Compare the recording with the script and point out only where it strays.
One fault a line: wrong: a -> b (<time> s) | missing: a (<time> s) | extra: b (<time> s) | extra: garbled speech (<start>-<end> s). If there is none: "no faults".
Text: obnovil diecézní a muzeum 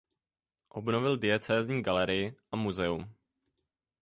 extra: galerii (1.8 s)